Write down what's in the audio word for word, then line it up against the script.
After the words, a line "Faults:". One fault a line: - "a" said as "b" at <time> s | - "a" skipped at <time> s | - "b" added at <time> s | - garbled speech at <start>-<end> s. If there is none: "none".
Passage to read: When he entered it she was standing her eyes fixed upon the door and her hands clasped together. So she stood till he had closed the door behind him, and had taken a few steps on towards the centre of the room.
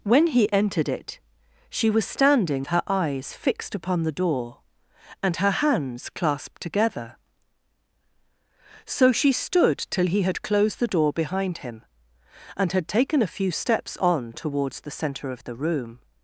When he entered it she was standing her eyes fixed upon the door and her hands clasped together. So she stood till he had closed the door behind him, and had taken a few steps on towards the centre of the room.
Faults:
none